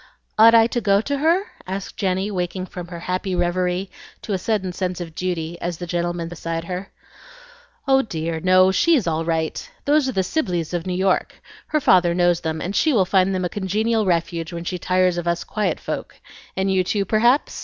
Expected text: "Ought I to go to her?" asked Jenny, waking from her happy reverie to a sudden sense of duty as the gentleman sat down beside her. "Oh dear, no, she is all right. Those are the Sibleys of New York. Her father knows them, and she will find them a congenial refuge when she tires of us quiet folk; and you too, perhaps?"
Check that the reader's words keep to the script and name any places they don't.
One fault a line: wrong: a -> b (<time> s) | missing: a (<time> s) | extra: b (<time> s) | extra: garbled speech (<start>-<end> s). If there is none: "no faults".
missing: sat down (6.3 s)